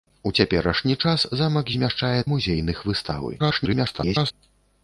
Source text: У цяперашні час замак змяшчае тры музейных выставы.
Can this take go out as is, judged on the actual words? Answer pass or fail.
fail